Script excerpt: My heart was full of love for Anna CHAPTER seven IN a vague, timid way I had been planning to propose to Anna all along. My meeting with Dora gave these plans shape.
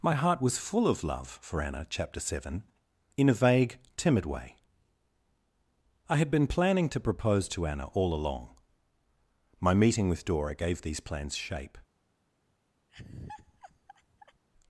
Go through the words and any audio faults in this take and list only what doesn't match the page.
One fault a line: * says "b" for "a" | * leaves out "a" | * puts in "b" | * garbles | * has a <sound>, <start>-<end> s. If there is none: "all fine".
* has a laugh, 12.9-14.4 s